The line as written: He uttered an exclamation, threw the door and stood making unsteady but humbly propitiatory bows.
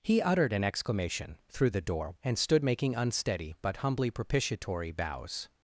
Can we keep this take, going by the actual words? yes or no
yes